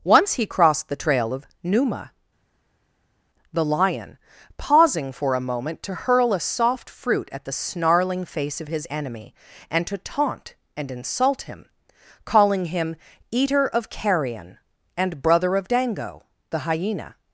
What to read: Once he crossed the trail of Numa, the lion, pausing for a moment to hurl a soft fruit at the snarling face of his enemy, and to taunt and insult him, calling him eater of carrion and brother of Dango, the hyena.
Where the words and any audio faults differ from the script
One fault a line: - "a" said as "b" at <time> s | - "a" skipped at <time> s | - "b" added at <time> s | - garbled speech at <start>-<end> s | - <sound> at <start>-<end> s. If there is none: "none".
none